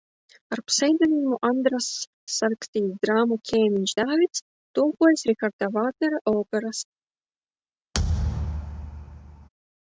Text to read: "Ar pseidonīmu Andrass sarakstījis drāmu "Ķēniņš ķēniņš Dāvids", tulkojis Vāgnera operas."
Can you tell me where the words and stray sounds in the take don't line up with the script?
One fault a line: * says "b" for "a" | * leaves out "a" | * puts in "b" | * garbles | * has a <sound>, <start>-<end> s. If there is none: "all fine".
* leaves out "ķēniņš"
* puts in "Riharda"
* has a thud, 7.9-9.5 s